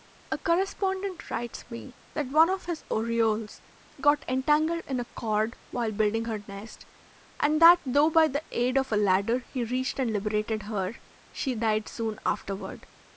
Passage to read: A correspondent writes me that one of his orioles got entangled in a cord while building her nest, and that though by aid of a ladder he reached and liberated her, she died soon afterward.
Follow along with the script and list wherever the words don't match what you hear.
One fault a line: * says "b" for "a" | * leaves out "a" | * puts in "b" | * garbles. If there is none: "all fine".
* puts in "the"